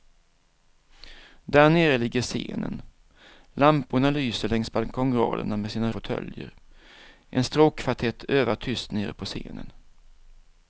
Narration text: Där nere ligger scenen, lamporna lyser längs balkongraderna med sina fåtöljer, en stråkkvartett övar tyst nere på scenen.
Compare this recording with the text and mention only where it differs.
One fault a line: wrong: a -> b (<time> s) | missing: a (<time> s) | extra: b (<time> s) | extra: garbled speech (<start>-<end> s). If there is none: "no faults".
no faults